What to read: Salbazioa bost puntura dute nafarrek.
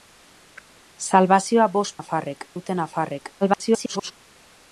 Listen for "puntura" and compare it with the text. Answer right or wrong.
wrong